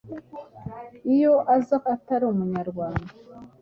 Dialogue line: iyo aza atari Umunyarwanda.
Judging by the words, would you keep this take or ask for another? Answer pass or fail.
pass